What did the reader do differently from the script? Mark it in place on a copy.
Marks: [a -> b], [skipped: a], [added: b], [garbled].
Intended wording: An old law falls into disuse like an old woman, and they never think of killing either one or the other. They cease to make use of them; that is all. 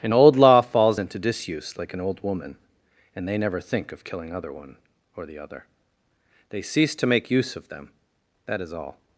An old law falls into disuse like an old woman, and they never think of killing [either -> other] one or the other. They cease to make use of them; that is all.